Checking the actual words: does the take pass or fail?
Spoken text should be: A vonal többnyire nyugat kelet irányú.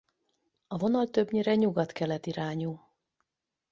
pass